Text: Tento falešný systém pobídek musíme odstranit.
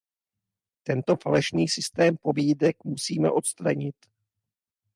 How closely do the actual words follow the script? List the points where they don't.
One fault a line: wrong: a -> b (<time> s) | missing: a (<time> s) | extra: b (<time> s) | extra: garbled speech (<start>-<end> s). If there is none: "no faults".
no faults